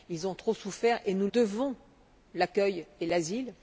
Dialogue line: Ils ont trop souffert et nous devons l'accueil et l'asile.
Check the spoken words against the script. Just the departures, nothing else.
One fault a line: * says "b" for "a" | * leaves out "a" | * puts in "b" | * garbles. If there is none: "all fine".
all fine